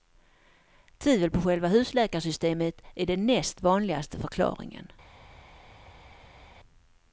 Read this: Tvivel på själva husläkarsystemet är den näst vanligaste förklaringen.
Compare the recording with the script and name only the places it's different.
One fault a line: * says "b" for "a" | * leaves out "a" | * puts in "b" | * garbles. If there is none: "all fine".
all fine